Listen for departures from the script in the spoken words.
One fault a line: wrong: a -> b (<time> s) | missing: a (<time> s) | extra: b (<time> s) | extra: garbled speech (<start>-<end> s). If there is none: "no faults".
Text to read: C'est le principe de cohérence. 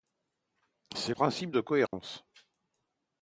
missing: le (1.1 s)